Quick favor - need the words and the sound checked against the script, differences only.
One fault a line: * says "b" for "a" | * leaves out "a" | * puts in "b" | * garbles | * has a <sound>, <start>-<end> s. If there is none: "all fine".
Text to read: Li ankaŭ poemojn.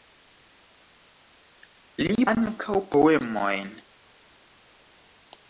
all fine